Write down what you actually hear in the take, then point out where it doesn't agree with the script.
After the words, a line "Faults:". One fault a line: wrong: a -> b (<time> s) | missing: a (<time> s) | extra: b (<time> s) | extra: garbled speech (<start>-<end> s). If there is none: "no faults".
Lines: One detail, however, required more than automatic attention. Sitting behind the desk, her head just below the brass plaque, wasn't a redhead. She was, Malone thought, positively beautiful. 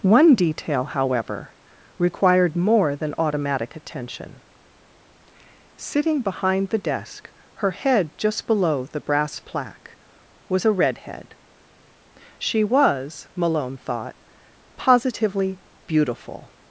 One detail, however, required more than automatic attention. Sitting behind the desk, her head just below the brass plaque, was a redhead. She was, Malone thought, positively beautiful.
Faults:
wrong: wasn't -> was (10.5 s)